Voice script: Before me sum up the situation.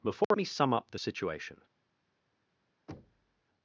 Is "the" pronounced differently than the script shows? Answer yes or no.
no